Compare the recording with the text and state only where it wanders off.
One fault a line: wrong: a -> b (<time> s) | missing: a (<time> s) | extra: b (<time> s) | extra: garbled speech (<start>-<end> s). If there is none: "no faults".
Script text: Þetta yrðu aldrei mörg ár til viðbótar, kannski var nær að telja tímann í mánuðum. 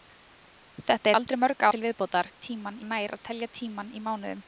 missing: yrðu (1.1 s)
missing: ár (1.7 s)
wrong: kannski -> tímann (2.5 s)